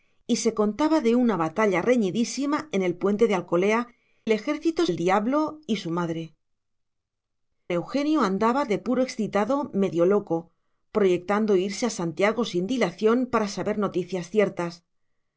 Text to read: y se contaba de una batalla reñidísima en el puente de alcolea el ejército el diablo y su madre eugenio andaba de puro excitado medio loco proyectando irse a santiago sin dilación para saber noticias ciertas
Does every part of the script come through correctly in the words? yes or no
yes